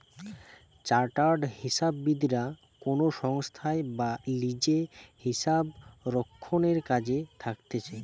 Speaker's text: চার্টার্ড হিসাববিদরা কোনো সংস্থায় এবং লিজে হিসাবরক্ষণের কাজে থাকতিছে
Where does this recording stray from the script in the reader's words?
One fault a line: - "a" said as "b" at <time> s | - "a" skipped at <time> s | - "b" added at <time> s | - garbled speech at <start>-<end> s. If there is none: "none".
- "এবং" said as "বা" at 4.0 s